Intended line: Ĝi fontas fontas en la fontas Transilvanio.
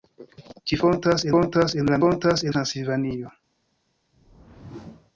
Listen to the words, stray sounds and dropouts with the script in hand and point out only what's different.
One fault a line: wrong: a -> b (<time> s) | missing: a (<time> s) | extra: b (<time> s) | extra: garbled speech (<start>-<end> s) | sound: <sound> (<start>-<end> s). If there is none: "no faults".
sound: whoosh (4.1-5.1 s)